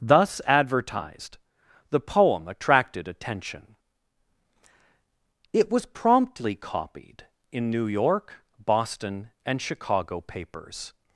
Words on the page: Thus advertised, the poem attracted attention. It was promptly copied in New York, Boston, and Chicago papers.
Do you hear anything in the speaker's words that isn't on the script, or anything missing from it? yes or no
no